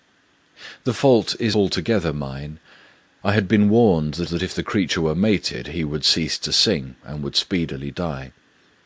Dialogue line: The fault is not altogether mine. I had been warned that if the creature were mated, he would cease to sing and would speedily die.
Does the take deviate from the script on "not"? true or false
true